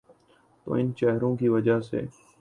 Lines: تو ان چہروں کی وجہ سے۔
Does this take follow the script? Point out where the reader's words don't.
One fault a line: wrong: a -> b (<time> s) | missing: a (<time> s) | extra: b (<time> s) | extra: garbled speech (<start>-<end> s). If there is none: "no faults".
no faults